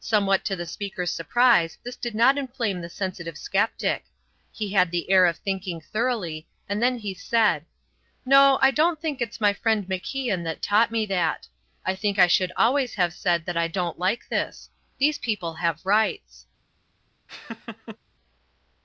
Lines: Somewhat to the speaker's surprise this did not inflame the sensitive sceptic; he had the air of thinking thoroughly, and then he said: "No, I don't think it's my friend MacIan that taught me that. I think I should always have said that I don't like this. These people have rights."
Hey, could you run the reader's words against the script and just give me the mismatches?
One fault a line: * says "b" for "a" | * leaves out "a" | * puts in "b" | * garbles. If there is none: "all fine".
all fine